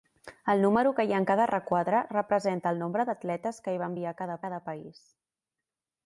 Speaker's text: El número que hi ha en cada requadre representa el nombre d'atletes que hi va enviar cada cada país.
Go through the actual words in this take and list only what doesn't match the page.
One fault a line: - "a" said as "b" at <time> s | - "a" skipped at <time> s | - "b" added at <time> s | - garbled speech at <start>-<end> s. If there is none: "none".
none